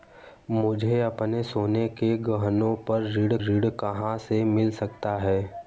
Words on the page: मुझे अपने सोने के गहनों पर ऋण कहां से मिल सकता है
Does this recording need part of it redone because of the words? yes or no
yes